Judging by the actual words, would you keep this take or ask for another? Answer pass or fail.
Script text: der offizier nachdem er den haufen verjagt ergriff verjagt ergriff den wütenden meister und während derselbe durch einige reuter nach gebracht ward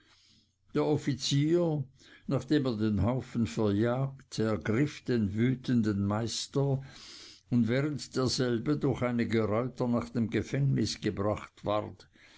fail